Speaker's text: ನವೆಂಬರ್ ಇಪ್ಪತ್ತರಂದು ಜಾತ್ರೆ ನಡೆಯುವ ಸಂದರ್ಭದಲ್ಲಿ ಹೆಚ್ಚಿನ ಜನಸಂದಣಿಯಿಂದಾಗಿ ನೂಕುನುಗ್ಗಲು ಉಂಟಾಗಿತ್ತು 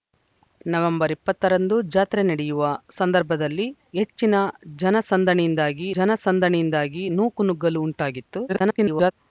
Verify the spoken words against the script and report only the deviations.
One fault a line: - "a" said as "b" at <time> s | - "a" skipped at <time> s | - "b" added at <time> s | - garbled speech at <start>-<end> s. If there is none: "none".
- "ಜನಸಂದಣಿಯಿಂದಾಗಿ" added at 6.0 s
- garbled speech at 8.5-9.1 s